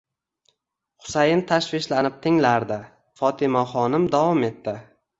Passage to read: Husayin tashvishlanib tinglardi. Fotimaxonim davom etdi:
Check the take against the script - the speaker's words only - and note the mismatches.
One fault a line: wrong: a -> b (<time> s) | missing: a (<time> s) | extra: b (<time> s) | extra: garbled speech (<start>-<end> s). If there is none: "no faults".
no faults